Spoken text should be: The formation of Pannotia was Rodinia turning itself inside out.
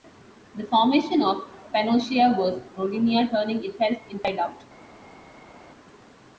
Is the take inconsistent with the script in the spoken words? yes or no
no